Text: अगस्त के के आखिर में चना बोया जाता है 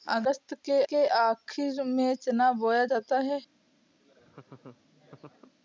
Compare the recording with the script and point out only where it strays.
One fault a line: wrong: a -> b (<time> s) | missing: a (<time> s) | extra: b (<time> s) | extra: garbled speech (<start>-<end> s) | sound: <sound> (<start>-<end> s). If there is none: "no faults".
sound: laugh (4.0-5.5 s)